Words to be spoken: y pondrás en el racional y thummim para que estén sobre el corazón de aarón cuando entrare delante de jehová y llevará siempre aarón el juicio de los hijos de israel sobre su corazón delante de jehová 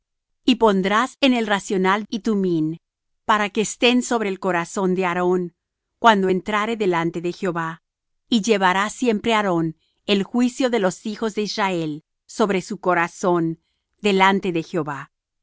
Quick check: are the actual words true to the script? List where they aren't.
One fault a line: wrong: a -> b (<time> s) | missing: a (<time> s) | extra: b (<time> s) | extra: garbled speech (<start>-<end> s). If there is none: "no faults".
no faults